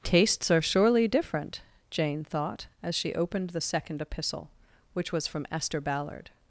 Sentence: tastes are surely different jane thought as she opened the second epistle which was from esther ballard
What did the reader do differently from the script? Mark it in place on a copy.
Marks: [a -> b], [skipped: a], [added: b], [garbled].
tastes are surely different jane thought as she opened the second epistle which was from esther ballard